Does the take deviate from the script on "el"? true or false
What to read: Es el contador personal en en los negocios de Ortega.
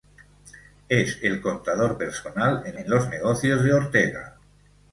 false